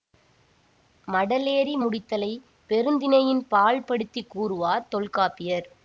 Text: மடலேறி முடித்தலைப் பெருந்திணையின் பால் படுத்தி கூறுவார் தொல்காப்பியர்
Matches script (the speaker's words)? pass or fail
pass